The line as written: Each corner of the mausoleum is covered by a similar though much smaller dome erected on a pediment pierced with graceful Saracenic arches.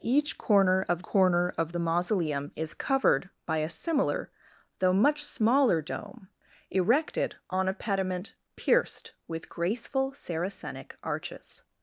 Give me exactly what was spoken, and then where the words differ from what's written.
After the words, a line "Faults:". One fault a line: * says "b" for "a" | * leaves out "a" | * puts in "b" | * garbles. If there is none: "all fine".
Each corner of corner of the mausoleum is covered by a similar though much smaller dome erected on a pediment pierced with graceful Saracenic arches.
Faults:
* puts in "corner of"